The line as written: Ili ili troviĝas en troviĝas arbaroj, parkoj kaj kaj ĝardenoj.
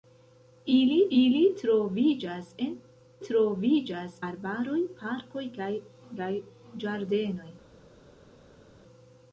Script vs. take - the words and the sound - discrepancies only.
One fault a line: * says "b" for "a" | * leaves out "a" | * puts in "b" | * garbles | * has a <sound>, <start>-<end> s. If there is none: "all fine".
all fine